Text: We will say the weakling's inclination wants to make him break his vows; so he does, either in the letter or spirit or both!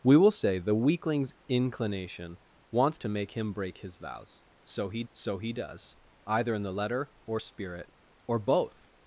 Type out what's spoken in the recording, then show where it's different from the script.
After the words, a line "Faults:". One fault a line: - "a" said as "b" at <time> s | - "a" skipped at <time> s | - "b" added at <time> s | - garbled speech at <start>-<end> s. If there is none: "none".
We will say the weakling's inclination wants to make him break his vows; so he so he does, either in the letter or spirit or both!
Faults:
- "so he" added at 5.1 s